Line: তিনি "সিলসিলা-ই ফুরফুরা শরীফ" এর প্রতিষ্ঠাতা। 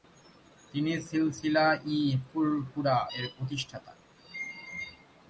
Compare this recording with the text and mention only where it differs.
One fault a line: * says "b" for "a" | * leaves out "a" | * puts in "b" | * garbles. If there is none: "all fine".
* leaves out "শরীফ"